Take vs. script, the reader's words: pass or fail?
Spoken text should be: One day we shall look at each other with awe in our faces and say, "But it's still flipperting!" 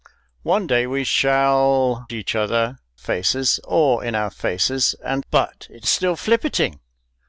fail